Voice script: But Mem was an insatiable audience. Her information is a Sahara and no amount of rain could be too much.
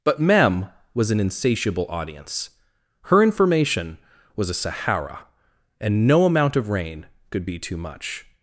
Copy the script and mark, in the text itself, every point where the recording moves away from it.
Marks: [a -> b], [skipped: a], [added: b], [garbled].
But Mem was an insatiable audience. Her information [is -> was] a Sahara and no amount of rain could be too much.